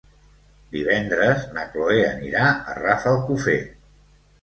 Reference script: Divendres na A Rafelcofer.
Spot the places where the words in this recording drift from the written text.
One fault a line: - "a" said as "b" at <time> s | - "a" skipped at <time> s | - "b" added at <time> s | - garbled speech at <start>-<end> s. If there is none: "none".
- "Cloè anirà" added at 1.8 s